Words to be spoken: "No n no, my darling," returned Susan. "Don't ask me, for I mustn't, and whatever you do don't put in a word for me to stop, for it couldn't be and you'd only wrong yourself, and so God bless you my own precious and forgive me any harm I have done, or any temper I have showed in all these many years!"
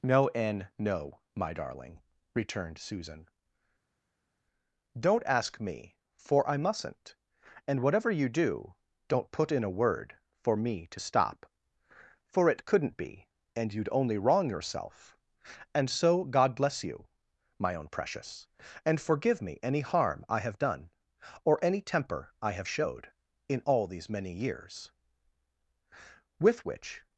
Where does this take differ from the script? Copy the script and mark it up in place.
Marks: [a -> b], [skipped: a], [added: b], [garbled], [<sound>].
"No n no, my darling," returned Susan. "Don't ask me, for I mustn't, and whatever you do don't put in a word for me to stop, for it couldn't be and you'd only wrong yourself, and so God bless you my own precious and forgive me any harm I have done, or any temper I have showed in all these many years!" [added: With which]